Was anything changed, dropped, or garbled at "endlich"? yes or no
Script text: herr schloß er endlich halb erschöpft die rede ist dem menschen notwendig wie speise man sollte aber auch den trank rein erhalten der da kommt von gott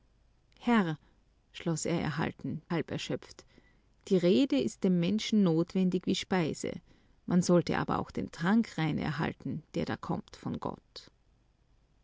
yes